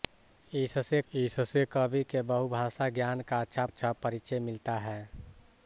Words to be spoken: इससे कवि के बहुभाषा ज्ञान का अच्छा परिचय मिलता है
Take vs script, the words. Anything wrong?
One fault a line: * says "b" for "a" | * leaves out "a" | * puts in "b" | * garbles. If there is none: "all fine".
* puts in "इससे"
* puts in "अच्छा"